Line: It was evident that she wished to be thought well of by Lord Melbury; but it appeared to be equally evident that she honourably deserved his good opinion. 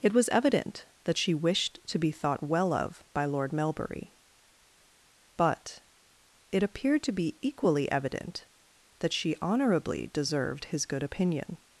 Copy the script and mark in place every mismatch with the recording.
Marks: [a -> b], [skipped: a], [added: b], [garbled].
It was evident that she wished to be thought well of by Lord Melbury; but it appeared to be equally evident that she honourably deserved his good opinion.